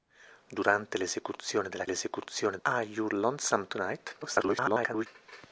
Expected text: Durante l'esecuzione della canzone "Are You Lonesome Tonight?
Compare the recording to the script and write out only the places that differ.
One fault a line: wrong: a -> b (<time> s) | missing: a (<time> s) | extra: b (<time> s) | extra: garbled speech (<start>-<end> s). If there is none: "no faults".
wrong: canzone -> l'esecuzione (1.9 s)
extra: garbled speech (4.2-5.1 s)